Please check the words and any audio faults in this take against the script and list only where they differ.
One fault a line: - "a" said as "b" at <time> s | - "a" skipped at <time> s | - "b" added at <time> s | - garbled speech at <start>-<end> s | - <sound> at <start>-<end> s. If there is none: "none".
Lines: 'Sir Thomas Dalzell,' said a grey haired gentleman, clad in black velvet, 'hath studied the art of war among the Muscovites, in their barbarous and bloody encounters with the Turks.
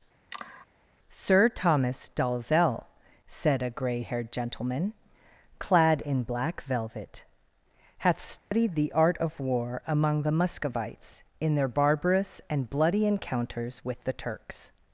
- sigh at 0.3-0.7 s
- dropout at 8.4-8.5 s